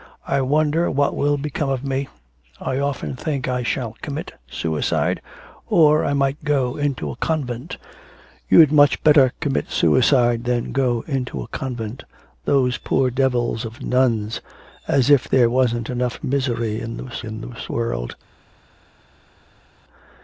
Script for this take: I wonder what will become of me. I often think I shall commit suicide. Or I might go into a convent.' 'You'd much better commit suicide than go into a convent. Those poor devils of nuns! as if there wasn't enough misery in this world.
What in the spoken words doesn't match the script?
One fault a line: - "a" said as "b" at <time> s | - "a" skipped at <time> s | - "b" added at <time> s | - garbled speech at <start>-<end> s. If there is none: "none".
- "in this" added at 17.2 s